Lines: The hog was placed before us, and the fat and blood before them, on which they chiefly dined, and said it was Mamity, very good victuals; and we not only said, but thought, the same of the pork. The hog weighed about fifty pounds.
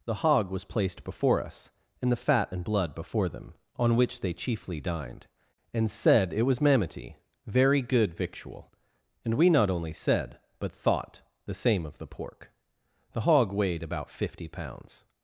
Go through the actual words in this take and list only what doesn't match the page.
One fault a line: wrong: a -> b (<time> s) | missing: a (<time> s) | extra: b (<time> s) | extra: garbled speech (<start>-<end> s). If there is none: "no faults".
wrong: victuals -> victual (8.1 s)